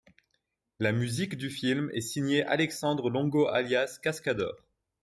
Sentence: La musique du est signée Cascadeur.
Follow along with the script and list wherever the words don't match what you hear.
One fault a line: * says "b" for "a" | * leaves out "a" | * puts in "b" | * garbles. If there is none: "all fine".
* puts in "film"
* puts in "Alexandre Longo alias"